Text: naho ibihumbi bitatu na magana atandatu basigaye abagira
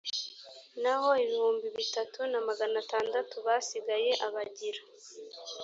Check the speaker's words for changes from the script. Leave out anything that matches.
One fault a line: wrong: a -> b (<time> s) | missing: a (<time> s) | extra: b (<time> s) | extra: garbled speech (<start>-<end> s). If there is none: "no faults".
no faults